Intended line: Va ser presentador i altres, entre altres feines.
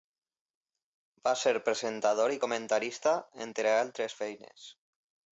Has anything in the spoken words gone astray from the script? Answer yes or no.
yes